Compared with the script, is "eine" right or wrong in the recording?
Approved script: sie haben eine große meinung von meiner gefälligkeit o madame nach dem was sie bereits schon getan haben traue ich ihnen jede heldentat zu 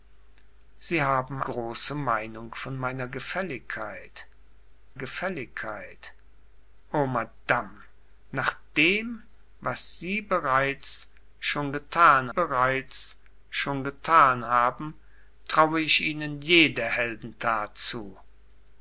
wrong